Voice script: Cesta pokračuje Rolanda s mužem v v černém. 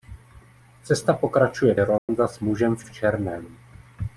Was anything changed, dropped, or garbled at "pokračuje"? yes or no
no